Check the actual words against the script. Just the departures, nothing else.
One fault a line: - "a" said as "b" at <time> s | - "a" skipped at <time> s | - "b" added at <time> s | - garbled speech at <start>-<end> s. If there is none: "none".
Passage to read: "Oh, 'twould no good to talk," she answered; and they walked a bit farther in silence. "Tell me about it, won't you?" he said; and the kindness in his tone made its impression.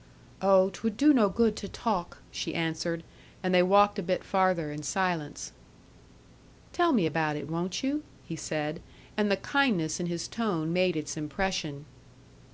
- "do" added at 1.0 s